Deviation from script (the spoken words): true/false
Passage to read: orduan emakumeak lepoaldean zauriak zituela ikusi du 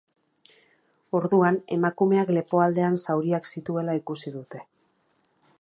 true